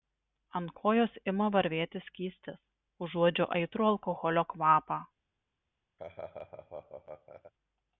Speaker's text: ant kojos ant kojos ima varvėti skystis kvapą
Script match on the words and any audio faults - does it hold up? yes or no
no